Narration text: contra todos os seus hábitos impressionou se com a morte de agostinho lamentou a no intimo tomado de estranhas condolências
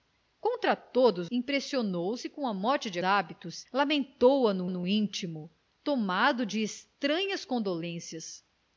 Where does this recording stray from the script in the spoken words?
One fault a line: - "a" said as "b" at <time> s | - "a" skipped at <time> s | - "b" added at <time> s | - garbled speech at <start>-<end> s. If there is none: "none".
- "os seus hábitos" skipped at 1.3 s
- "agostinho" said as "hábitos" at 3.0 s
- "no" added at 4.7 s